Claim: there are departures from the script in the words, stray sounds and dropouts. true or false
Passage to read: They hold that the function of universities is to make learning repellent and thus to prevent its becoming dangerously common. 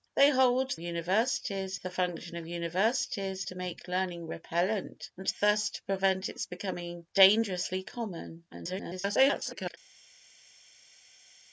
true